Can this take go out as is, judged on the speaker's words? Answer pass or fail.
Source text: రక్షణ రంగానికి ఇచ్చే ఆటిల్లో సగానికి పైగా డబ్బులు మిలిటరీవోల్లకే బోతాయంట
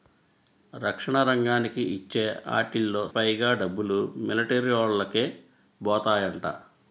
fail